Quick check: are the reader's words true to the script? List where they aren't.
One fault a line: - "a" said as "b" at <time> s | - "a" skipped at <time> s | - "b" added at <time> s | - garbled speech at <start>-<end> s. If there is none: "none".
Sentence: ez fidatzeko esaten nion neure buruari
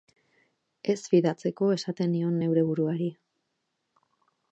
none